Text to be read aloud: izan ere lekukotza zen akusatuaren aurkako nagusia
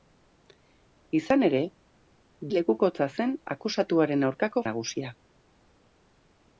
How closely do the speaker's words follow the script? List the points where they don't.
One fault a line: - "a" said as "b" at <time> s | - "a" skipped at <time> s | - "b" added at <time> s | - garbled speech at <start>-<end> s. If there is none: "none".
none